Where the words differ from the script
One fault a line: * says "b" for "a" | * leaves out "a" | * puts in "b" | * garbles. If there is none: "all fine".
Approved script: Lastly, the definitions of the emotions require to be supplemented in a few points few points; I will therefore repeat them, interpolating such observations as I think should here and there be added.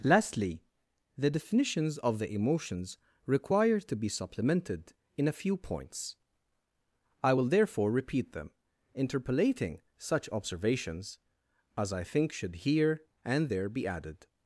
* leaves out "few points"